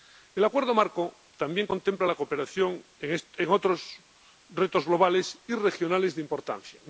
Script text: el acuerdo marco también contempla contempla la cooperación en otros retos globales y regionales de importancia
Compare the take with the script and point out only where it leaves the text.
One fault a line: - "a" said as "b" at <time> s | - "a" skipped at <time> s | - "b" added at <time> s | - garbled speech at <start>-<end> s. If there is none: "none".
- "contempla" skipped at 2.1 s